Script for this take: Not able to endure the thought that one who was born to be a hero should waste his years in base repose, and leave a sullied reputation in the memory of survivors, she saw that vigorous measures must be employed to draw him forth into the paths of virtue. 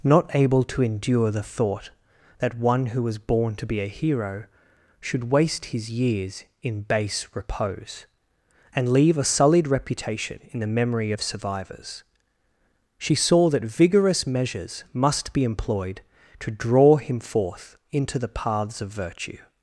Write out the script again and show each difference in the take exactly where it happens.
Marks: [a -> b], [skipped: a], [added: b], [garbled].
Not able to endure the thought that one who was born to be a hero should waste his years in base repose, and leave a sullied reputation in the memory of survivors, she saw that vigorous measures must be employed to draw him forth into the paths of virtue.